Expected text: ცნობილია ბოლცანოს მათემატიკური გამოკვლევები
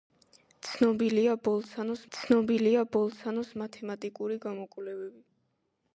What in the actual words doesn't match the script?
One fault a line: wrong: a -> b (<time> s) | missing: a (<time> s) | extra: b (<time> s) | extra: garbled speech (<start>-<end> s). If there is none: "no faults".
extra: ცნობილია ბოლცანოს (2.2 s)